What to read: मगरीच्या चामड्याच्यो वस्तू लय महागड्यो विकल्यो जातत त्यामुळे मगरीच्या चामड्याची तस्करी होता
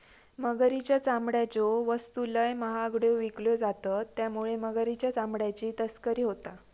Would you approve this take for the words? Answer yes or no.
yes